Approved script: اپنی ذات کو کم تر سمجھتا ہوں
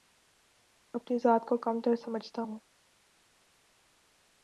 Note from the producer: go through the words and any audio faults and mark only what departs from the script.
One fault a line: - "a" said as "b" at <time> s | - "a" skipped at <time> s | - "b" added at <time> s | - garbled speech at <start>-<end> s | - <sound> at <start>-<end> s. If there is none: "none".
none